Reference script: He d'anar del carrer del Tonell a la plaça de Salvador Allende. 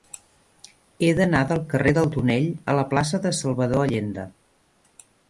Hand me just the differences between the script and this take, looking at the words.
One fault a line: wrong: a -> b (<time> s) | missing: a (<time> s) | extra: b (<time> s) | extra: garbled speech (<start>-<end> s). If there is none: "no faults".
no faults